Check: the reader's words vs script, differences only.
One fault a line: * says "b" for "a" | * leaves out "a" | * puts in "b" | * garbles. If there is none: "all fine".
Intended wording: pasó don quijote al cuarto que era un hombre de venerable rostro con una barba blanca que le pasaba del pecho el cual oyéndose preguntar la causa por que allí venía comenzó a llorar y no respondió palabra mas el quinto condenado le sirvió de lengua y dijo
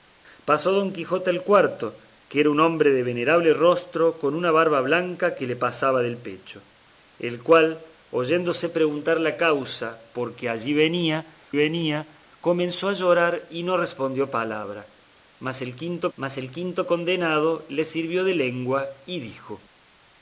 * puts in "venía"
* puts in "mas el quinto"